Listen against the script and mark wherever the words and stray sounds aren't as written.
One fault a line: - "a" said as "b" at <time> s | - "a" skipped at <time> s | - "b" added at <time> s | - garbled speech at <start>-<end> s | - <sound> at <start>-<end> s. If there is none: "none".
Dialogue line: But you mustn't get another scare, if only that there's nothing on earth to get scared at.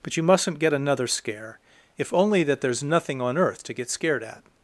none